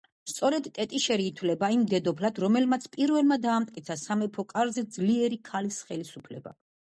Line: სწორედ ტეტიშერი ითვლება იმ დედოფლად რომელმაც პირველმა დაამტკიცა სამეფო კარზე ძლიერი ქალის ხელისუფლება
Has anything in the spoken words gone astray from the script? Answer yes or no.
no